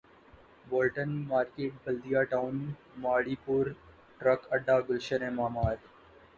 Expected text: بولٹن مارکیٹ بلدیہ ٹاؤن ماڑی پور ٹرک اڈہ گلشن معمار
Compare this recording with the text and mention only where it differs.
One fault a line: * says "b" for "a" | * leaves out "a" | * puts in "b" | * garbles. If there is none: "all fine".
all fine